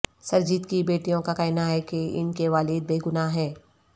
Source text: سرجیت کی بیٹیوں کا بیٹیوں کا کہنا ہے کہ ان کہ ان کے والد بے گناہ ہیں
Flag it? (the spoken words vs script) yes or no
yes